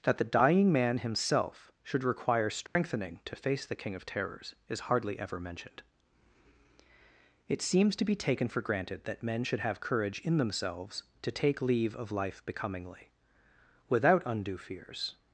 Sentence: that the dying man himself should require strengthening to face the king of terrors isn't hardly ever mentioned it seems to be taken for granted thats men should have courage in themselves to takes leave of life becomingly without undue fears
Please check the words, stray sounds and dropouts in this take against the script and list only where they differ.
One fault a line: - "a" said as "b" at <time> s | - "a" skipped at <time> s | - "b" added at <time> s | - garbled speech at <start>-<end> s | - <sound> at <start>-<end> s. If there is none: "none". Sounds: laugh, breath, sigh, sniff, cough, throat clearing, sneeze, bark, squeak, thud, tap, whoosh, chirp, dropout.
- dropout at 2.7-2.8 s
- "isn't" said as "is" at 4.7 s
- "thats" said as "that" at 9.1 s
- "takes" said as "take" at 11.3 s